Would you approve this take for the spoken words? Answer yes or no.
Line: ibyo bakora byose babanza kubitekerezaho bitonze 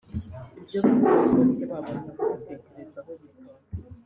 yes